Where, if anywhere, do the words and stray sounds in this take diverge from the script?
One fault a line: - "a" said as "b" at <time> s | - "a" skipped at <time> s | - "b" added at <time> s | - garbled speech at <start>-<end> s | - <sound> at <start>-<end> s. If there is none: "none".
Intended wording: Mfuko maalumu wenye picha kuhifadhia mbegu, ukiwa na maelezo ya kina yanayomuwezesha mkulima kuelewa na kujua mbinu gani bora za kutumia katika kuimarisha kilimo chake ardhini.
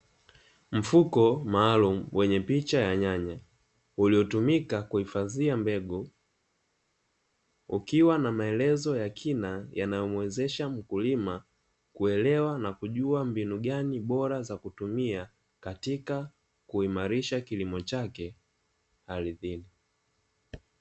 - "ya nyanya uliotumika" added at 2.8 s